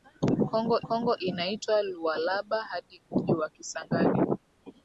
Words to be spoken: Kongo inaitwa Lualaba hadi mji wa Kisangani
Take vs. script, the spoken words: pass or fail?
fail